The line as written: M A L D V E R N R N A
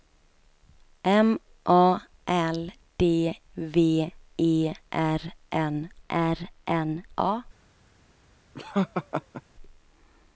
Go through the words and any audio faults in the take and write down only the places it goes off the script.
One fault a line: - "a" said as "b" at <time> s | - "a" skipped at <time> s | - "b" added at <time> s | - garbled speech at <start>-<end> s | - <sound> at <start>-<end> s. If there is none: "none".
- laugh at 8.5-9.4 s